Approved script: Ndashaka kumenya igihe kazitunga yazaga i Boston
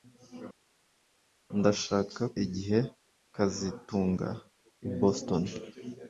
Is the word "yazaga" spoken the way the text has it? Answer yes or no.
no